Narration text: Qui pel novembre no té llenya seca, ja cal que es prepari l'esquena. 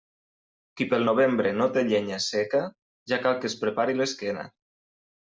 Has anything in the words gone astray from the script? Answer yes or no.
no